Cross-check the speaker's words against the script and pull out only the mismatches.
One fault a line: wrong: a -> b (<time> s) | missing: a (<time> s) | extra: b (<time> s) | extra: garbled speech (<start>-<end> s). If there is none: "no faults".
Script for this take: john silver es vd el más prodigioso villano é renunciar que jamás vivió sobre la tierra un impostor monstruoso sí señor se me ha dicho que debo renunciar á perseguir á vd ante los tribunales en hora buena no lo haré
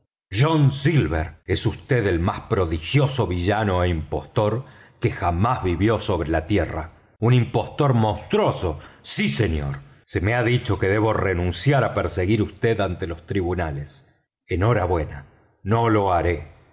wrong: renunciar -> impostor (4.0 s)